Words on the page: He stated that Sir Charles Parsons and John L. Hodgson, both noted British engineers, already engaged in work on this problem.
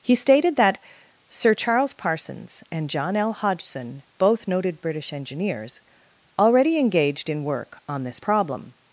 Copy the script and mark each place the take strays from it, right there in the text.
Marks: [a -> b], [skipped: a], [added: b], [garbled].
He stated that Sir Charles Parsons and John L. Hodgson, both noted British engineers, already engaged in work on this problem.